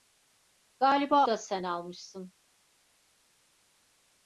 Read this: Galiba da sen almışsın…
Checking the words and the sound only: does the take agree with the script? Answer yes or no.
yes